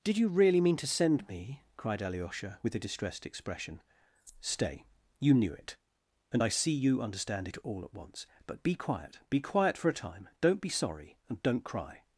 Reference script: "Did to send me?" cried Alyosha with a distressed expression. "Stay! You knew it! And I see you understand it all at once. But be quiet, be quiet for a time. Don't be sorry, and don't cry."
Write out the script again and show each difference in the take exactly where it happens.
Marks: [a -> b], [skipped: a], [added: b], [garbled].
"Did [added: you really mean] to send me?" cried Alyosha with a distressed expression. "Stay! You knew it! And I see you understand it all at once. But be quiet, be quiet for a time. Don't be sorry, and don't cry."